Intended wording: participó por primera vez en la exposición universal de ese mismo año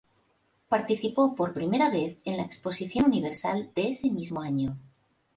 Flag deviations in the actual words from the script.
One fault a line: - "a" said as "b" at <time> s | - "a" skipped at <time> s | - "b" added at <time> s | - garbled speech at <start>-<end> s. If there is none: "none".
none